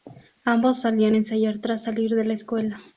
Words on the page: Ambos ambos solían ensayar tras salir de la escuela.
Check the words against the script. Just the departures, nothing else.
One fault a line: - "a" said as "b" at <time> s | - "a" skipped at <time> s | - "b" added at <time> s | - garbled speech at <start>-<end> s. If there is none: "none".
- "ambos" skipped at 0.8 s